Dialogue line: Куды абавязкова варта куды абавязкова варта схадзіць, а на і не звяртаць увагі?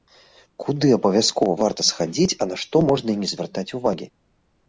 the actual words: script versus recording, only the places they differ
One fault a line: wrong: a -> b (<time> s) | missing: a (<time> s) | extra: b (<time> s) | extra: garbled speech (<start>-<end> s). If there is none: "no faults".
missing: куды абавязкова варта (1.8 s)
extra: што можна (2.6 s)